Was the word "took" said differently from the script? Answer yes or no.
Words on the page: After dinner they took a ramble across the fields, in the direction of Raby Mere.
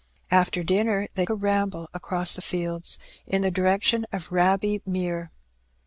yes